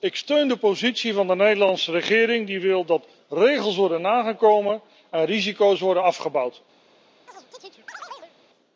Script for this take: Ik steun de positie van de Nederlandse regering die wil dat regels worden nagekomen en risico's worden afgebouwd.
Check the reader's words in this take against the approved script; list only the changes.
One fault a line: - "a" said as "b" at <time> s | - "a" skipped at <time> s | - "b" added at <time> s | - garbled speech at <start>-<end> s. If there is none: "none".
none